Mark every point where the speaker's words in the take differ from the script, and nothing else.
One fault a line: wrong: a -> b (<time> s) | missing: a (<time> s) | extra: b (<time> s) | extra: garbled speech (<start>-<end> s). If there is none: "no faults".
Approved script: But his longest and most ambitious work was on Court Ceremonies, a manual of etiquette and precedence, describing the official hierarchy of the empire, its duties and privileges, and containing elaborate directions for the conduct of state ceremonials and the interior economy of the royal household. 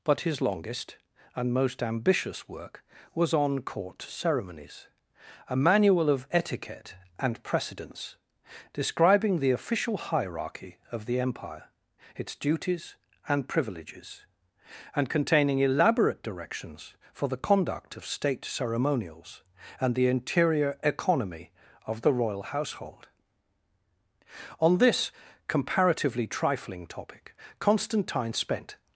extra: On this comparatively trifling topic Constantine spent (24.6 s)